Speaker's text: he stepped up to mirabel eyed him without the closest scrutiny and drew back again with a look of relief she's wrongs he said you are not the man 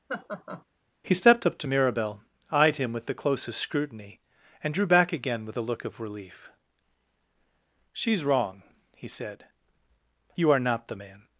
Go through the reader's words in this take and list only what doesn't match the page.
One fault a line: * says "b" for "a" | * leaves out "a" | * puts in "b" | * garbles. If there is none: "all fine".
* says "with" for "without"
* says "wrong" for "wrongs"